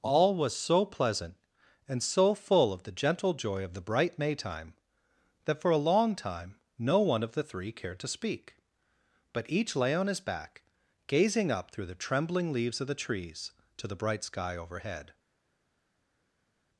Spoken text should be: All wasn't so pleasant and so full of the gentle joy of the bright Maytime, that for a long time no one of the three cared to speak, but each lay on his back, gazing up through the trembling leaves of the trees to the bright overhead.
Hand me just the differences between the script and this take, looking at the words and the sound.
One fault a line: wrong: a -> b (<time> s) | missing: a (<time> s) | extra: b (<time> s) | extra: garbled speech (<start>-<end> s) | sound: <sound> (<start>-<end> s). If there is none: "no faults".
wrong: wasn't -> was (0.3 s)
extra: sky (14.2 s)